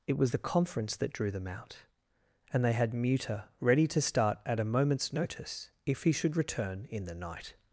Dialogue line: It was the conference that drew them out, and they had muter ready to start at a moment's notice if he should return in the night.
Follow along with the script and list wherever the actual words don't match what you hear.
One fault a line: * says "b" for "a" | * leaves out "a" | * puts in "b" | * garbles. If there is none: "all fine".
all fine